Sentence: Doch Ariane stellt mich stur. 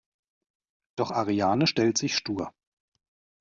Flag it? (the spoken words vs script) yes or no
yes